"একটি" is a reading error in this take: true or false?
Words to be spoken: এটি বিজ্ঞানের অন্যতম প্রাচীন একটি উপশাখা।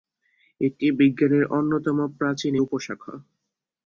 true